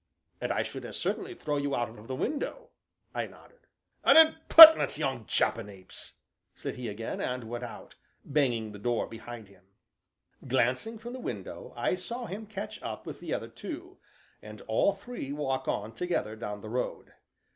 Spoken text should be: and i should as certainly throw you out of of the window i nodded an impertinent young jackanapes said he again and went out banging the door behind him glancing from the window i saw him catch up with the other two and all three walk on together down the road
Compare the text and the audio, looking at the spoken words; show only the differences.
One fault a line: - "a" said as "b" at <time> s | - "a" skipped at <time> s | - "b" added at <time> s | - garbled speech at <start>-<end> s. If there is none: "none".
none